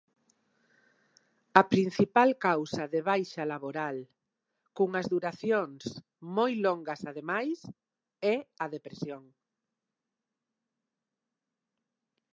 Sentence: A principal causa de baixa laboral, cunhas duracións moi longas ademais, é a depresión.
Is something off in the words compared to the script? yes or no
no